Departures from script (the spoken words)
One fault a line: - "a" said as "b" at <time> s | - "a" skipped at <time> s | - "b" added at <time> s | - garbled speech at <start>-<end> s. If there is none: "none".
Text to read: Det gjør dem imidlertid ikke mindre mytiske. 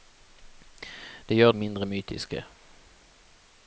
- "dem imidlertid ikke" skipped at 1.5 s